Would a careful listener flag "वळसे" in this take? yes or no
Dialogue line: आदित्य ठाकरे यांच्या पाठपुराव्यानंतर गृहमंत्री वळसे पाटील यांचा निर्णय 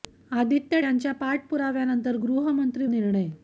yes